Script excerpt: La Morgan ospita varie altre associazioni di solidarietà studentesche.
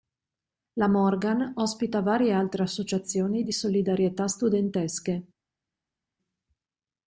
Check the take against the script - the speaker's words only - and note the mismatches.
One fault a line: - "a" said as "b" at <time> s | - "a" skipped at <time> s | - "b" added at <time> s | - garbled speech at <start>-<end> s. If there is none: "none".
none